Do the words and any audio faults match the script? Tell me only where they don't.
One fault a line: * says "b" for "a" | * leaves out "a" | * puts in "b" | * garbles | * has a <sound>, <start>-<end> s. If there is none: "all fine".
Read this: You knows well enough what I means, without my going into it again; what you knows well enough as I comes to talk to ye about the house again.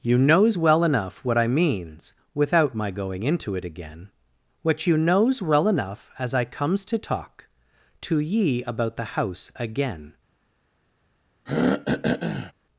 * has a throat clearing, 11.5-12.5 s